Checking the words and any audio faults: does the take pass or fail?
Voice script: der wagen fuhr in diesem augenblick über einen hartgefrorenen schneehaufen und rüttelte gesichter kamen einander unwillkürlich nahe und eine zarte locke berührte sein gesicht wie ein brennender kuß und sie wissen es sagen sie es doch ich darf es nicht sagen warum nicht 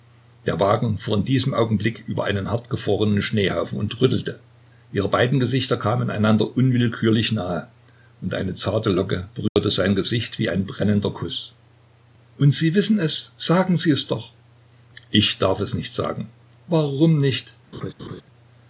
fail